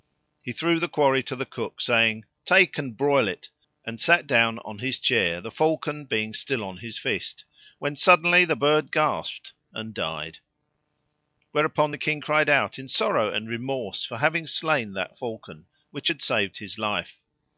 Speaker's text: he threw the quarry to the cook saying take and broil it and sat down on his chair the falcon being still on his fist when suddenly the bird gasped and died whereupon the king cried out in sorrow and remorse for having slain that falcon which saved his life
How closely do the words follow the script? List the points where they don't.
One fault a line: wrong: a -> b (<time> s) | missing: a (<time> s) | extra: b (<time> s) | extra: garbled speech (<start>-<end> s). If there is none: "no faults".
extra: had (16.1 s)